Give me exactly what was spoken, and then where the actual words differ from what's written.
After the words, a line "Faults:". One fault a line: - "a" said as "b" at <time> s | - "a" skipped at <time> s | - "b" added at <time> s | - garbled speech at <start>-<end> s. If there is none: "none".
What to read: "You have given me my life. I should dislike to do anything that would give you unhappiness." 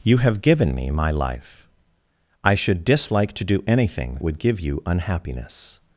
"You have given me my life. I should dislike to do anything would give you unhappiness."
Faults:
- "that" skipped at 4.2 s